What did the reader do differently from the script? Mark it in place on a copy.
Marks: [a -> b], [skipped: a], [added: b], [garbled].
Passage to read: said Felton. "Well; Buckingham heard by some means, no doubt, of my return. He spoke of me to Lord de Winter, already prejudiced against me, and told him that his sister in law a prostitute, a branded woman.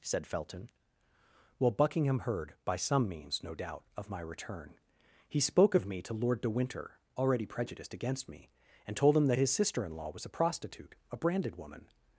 said Felton. "Well; Buckingham heard by some means, no doubt, of my return. He spoke of me to Lord de Winter, already prejudiced against me, and told him that his sister in law [added: was] a prostitute, a branded woman.